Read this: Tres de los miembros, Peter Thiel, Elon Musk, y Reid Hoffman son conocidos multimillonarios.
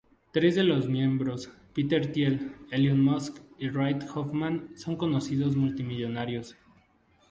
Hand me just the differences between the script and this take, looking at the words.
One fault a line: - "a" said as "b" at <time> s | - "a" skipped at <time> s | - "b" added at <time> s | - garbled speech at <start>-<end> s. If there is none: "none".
none